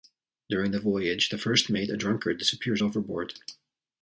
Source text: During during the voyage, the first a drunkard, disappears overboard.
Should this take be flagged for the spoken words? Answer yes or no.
yes